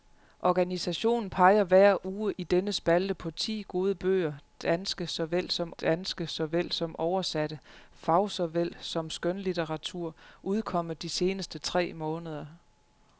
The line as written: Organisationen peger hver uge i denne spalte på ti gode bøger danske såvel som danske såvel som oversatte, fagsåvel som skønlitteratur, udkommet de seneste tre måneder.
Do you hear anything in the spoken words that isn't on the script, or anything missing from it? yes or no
no